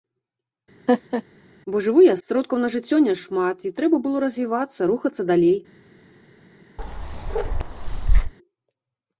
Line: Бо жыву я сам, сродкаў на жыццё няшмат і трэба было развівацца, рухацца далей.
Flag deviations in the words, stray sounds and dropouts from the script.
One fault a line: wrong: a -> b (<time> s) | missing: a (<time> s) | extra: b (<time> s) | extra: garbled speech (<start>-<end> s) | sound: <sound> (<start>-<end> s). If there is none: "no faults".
sound: laugh (0.9-1.2 s)
missing: сам (2.1 s)
sound: bark (6.8-8.3 s)